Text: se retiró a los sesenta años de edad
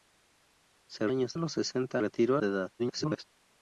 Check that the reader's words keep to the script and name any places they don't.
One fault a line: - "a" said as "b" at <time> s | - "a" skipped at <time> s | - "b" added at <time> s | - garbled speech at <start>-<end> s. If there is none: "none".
- "retiró" said as "años" at 1.1 s
- "años" said as "retiró" at 1.9 s
- garbled speech at 2.8-3.2 s